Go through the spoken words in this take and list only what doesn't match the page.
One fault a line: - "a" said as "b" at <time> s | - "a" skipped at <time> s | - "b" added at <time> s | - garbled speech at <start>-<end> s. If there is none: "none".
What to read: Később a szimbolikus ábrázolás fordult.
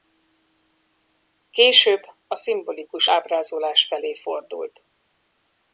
- "felé" added at 3.9 s